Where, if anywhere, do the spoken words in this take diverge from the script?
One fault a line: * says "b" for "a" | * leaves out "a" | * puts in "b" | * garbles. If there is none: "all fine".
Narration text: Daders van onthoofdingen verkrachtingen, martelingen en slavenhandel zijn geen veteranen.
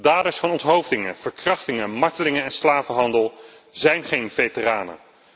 all fine